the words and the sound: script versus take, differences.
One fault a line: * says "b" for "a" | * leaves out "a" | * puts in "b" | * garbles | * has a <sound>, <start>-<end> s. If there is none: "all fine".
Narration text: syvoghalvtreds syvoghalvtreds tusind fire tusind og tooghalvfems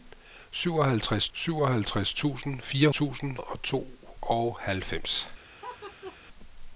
* has a laugh, 5.6-6.2 s